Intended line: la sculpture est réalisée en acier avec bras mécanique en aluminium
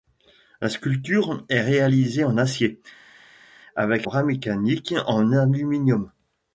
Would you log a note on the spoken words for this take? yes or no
no